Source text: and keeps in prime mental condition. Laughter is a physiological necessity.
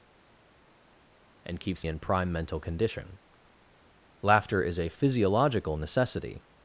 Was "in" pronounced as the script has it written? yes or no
yes